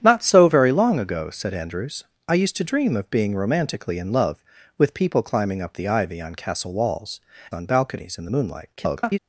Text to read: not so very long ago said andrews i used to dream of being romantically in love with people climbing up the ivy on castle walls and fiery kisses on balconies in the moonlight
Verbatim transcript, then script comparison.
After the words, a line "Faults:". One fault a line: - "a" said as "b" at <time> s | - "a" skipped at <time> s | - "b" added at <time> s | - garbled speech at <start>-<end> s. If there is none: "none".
not so very long ago said andrews i used to dream of being romantically in love with people climbing up the ivy on castle walls on balconies in the moonlight [garbled]
Faults:
- "and fiery kisses" skipped at 7.2 s
- garbled speech at 8.8-9.2 s